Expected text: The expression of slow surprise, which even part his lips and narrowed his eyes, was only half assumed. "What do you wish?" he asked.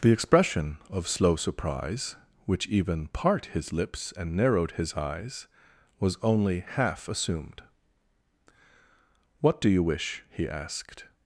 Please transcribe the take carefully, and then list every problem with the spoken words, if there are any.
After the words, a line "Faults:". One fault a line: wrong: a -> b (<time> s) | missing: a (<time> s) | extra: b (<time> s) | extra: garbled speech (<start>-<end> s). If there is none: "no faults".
The expression of slow surprise, which even part his lips and narrowed his eyes, was only half assumed. "What do you wish?" he asked.
Faults:
no faults